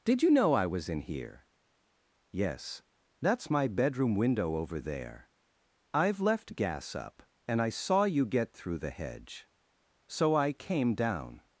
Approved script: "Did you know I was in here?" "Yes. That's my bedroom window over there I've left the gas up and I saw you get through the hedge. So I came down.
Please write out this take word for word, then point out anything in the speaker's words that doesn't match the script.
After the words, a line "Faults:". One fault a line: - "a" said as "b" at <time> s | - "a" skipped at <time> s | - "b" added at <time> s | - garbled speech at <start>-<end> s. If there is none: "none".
"Did you know I was in here?" "Yes. That's my bedroom window over there I've left gas up and I saw you get through the hedge. So I came down.
Faults:
- "the" skipped at 6.5 s